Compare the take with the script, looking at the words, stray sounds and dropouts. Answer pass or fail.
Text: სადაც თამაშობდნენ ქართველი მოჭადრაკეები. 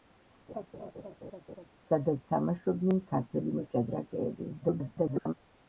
fail